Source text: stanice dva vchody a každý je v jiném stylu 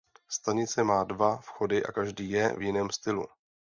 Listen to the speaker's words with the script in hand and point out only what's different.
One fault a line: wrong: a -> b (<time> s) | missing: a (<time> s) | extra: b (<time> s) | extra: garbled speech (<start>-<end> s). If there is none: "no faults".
extra: má (0.8 s)